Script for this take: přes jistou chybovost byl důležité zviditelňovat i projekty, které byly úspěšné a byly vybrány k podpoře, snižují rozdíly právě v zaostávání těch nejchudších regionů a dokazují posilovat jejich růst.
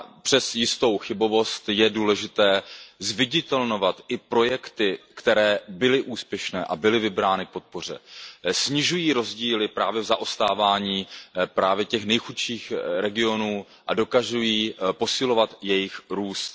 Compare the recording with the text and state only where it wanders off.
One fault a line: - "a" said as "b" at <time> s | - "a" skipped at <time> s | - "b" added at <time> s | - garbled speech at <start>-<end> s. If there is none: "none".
- "byl" said as "je" at 1.7 s